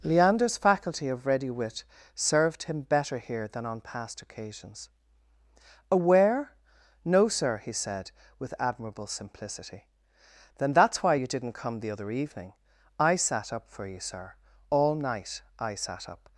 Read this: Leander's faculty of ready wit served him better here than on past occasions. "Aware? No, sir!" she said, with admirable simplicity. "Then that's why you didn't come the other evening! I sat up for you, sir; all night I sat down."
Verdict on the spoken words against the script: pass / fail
fail